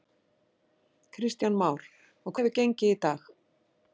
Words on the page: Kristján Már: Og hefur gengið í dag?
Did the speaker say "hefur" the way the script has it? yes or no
yes